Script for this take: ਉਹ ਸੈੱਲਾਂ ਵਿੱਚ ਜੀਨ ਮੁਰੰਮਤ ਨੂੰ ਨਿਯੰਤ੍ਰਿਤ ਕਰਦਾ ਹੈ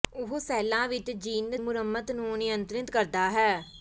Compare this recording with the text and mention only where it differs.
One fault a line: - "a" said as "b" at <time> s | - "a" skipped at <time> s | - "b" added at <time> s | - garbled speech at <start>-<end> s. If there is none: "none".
none